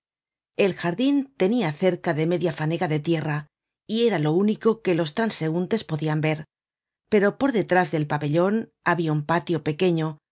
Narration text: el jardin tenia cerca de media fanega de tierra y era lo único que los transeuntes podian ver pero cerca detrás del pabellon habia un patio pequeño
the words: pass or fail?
fail